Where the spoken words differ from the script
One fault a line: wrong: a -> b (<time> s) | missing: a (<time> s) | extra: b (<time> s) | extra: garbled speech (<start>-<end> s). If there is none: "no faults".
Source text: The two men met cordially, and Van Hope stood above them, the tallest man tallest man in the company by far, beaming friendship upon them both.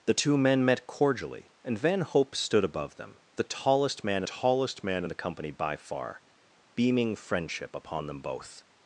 no faults